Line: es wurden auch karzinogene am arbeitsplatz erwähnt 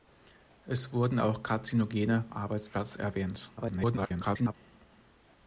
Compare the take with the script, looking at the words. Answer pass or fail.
fail